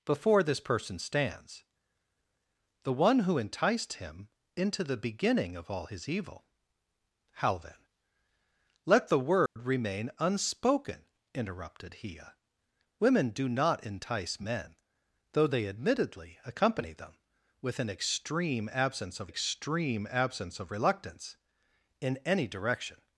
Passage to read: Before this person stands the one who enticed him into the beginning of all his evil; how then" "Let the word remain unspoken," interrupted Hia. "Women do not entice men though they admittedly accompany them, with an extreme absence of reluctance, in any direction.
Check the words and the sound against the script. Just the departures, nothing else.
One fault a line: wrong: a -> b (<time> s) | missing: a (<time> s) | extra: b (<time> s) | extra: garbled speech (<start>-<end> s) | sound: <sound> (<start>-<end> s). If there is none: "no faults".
sound: dropout (9.5-9.6 s)
extra: extreme absence of (19.2 s)